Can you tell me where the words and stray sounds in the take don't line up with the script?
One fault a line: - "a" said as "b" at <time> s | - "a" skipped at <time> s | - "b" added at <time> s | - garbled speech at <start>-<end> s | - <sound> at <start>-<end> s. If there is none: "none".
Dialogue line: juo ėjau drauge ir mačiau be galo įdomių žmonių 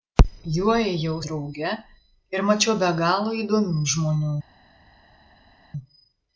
none